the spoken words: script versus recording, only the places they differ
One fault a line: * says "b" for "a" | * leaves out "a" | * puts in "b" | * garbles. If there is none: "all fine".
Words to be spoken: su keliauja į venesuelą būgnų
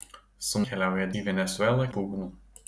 all fine